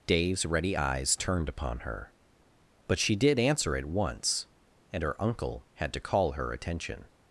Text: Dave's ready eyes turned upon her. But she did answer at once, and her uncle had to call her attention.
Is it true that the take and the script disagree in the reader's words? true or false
false